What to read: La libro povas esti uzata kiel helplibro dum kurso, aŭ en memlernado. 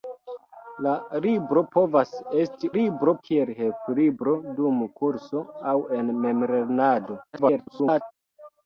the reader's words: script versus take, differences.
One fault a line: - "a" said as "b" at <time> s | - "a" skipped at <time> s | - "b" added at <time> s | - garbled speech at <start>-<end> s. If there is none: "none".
- "uzata" said as "libro" at 2.8 s
- garbled speech at 7.3-8.1 s